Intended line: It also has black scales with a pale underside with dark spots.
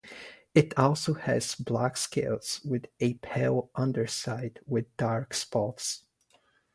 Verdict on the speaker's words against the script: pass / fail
pass